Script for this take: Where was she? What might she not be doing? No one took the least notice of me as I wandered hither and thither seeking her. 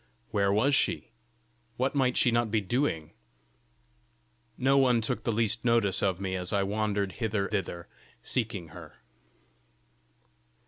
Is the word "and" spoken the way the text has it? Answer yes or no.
no